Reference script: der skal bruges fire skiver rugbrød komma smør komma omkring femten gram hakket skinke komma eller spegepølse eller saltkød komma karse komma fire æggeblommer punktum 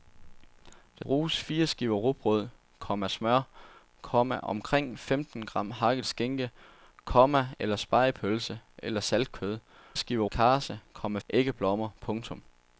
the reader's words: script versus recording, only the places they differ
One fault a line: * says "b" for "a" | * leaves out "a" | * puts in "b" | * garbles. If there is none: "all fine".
* leaves out "skal"
* says "skiver" for "komma"
* leaves out "fire"